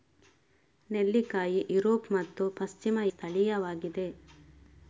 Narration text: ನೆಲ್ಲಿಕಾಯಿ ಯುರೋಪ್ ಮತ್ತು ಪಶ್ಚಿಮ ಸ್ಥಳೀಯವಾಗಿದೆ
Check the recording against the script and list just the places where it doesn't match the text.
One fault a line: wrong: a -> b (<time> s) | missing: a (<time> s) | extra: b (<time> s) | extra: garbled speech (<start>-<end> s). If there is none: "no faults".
no faults